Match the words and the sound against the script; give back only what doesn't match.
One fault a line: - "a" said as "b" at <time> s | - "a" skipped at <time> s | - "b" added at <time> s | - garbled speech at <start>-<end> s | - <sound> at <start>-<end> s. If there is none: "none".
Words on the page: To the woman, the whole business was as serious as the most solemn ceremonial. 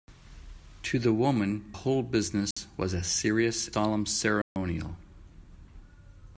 - "the" skipped at 1.7 s
- dropout at 2.5-2.6 s
- "as the most" skipped at 3.7 s
- dropout at 4.4-4.6 s